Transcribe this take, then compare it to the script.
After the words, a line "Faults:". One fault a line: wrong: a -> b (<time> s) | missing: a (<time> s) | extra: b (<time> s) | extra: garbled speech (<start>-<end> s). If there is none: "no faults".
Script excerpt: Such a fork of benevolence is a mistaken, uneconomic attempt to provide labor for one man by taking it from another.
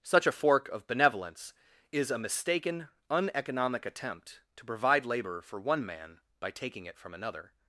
Such a fork of benevolence is a mistaken, uneconomic attempt to provide labor for one man by taking it from another.
Faults:
no faults